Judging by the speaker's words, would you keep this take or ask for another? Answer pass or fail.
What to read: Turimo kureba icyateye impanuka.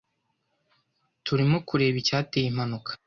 pass